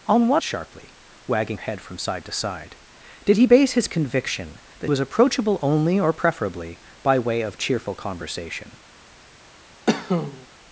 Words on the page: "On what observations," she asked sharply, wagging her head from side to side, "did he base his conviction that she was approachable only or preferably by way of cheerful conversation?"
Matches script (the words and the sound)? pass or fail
fail